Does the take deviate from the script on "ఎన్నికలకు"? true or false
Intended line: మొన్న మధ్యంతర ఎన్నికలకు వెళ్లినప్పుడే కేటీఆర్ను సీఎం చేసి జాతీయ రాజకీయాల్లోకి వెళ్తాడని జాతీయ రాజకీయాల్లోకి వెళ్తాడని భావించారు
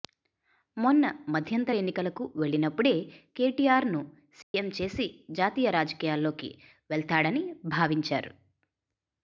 false